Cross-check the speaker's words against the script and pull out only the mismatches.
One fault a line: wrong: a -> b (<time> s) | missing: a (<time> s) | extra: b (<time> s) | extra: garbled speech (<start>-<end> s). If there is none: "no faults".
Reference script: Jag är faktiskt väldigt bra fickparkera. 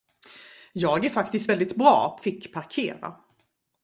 no faults